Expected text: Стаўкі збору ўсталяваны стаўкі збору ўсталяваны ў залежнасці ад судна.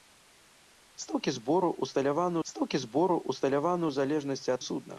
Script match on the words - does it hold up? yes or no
yes